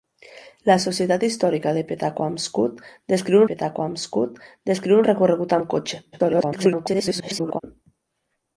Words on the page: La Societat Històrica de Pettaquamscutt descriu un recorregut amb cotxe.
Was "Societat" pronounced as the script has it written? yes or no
yes